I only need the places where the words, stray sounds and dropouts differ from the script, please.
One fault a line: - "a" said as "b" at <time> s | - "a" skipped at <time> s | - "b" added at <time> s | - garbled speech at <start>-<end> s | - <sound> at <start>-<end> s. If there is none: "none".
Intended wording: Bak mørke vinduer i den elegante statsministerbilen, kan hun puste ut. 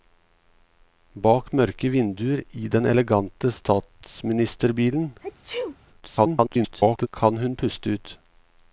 - sneeze at 5.2-5.8 s
- garbled speech at 6.0-7.1 s